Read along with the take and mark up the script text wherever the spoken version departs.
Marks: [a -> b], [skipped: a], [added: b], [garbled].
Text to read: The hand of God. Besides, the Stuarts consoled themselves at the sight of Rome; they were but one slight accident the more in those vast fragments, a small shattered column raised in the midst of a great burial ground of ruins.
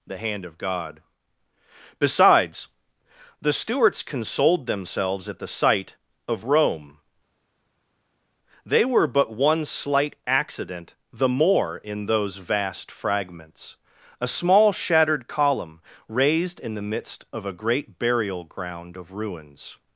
The hand of God. Besides, the Stuarts consoled themselves at the sight of Rome; they were but one slight accident the more in those vast fragments, a small shattered column raised in the midst of a great burial ground of ruins.